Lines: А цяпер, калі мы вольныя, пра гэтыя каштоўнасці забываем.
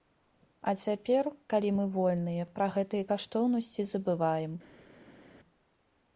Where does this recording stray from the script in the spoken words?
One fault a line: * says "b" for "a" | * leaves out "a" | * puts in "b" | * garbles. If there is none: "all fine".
all fine